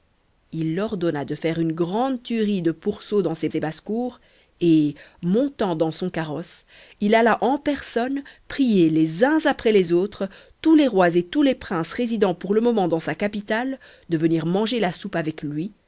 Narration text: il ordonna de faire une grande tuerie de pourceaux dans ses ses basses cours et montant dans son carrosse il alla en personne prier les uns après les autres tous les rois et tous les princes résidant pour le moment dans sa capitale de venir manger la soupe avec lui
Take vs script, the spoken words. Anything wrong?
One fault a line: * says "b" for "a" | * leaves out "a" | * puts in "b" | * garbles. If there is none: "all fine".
all fine